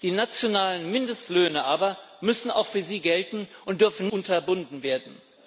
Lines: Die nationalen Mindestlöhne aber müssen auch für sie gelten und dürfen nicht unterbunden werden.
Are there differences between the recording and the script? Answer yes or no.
yes